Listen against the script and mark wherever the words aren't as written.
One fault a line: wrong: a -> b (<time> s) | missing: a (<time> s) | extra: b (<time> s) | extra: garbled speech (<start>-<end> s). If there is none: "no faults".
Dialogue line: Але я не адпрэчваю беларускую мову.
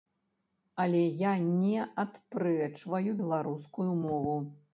no faults